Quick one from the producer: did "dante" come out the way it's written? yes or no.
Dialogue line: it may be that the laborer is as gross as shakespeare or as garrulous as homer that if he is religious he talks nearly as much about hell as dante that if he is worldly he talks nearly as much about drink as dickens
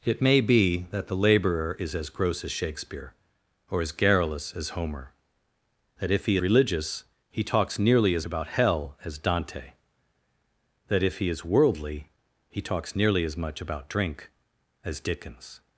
yes